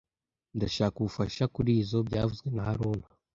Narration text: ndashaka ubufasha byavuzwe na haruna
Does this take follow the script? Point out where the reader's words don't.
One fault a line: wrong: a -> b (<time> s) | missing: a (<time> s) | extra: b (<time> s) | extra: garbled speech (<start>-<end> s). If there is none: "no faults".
extra: kurizoi (1.5 s)